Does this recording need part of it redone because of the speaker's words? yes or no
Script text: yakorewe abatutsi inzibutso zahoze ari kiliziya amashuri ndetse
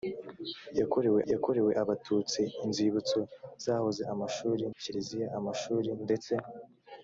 yes